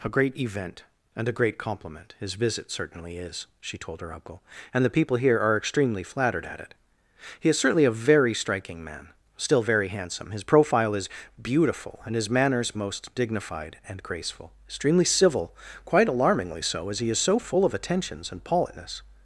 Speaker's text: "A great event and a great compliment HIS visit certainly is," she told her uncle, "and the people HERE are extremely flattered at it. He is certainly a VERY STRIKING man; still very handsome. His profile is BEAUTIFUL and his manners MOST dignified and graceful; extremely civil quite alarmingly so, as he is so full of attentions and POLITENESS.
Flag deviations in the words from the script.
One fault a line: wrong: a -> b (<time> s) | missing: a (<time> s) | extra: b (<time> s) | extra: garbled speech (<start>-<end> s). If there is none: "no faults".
no faults